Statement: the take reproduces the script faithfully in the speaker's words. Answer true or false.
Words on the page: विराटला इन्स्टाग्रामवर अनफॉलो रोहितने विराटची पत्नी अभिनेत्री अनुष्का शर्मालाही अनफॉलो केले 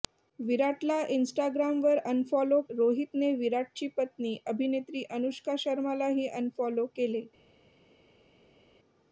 true